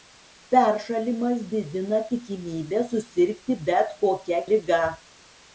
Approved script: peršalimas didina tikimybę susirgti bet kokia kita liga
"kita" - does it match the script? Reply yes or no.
no